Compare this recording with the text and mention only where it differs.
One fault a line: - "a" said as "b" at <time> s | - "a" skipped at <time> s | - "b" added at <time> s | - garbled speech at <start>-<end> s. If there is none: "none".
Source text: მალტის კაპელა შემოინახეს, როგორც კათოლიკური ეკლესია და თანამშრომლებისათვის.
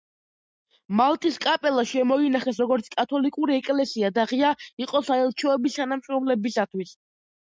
- "ღია იყო საელჩოების" added at 4.3 s